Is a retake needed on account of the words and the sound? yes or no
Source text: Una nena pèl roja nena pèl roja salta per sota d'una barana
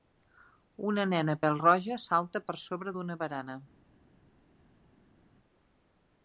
yes